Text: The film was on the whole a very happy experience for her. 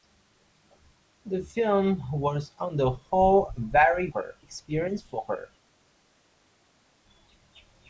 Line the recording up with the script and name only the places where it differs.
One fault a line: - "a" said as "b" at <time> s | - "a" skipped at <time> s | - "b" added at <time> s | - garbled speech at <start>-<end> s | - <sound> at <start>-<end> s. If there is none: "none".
- "happy" said as "her" at 4.1 s